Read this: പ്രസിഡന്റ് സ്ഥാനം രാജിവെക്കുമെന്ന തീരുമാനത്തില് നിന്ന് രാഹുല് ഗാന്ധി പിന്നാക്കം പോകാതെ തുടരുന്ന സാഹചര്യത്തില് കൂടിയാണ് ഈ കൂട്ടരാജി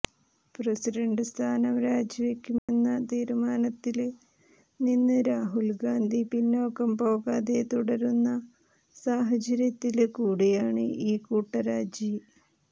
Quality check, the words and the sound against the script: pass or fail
fail